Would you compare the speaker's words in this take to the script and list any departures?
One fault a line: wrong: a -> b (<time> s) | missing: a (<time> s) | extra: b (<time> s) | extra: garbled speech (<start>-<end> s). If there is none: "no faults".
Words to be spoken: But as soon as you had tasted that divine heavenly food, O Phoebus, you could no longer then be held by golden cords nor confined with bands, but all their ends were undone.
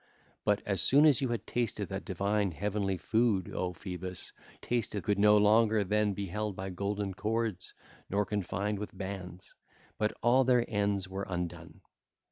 wrong: you -> tasted (4.6 s)